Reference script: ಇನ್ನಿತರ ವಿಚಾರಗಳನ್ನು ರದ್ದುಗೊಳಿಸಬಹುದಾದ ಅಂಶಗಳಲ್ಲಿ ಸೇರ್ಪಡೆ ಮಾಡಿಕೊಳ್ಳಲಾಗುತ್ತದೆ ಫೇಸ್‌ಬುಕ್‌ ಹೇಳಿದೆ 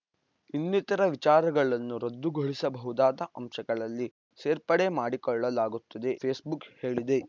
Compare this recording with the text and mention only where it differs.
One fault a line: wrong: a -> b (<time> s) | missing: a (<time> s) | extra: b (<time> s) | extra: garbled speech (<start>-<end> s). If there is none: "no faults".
no faults